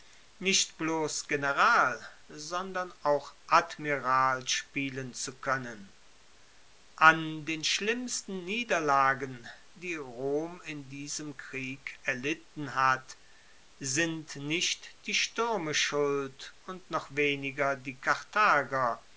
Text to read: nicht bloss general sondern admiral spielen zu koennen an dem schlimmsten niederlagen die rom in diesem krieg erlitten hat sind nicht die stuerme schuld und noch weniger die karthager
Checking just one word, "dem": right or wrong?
wrong